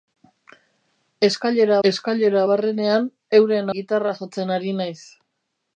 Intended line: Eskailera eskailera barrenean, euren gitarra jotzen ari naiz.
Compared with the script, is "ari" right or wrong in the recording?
right